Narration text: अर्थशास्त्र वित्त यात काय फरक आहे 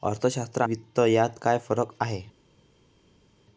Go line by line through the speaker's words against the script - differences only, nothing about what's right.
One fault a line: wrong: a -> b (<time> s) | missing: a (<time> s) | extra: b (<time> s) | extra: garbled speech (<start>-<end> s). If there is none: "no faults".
no faults